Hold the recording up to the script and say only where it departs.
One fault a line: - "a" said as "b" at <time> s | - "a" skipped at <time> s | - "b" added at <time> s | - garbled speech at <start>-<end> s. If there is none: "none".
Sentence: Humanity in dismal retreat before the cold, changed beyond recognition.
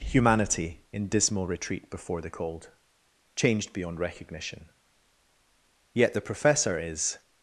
- "Yet the Professor is" added at 5.9 s